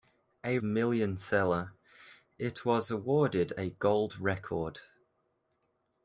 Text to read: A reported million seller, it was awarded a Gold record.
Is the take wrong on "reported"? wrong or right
wrong